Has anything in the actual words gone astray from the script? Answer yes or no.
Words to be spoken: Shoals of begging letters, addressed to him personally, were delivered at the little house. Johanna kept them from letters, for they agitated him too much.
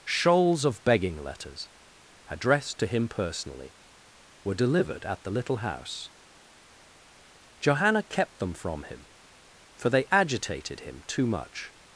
yes